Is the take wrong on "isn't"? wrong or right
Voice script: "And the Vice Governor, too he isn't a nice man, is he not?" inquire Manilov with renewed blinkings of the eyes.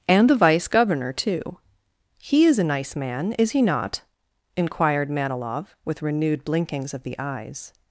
wrong